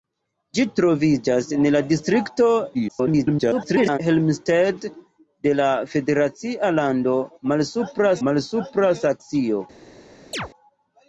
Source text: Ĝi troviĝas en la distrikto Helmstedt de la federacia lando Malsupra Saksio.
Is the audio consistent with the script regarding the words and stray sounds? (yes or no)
no